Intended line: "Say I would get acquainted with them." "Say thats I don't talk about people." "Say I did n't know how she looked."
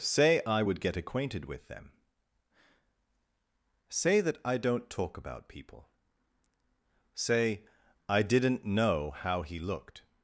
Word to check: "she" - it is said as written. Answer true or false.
false